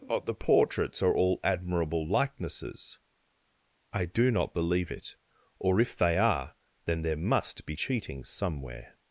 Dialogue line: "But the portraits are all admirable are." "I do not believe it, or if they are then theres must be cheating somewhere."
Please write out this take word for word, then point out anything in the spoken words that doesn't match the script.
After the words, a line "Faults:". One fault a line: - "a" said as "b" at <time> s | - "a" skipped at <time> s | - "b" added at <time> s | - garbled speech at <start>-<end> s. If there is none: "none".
"But the portraits are all admirable likenesses." "I do not believe it, or if they are then there must be cheating somewhere."
Faults:
- "are" said as "likenesses" at 2.1 s
- "theres" said as "there" at 7.0 s